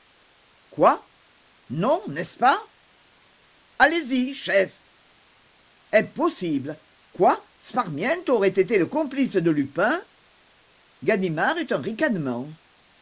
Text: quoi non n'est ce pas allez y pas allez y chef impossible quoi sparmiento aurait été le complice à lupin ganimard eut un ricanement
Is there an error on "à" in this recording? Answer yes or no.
yes